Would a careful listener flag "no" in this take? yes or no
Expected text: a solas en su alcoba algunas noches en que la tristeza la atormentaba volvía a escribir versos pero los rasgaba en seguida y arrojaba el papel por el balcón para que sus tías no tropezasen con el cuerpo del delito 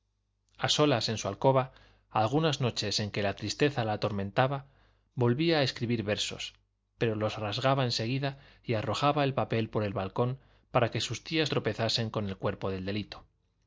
yes